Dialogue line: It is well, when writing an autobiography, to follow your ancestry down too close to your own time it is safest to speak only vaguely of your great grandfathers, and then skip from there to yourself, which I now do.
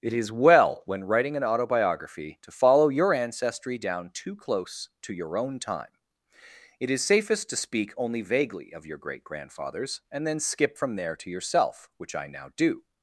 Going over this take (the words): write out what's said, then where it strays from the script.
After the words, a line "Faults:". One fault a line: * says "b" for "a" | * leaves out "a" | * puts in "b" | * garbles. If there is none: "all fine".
It is well, when writing an autobiography, to follow your ancestry down too close to your own time it is safest to speak only vaguely of your great grandfathers, and then skip from there to yourself, which I now do.
Faults:
all fine